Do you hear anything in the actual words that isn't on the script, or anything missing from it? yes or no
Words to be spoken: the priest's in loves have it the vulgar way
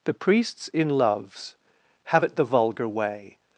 no